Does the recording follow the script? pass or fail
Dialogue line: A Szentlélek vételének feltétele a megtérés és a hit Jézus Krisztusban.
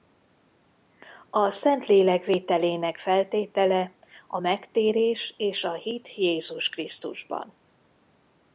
pass